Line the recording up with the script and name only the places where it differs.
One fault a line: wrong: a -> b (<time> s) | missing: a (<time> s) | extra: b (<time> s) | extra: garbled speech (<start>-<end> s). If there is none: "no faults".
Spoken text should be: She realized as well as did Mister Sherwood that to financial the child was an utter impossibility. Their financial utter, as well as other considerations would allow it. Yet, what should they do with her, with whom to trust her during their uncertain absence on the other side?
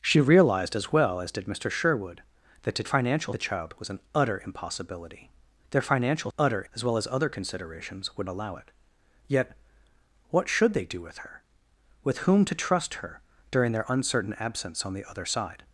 no faults